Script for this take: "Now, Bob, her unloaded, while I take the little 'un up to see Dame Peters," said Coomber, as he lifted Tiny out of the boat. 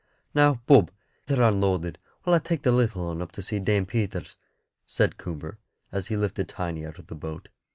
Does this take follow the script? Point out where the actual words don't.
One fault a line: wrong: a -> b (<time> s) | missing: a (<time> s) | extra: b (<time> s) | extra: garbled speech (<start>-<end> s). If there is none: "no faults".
no faults